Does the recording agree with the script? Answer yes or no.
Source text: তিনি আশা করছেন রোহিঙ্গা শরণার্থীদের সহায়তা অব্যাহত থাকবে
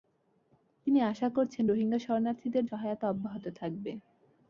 yes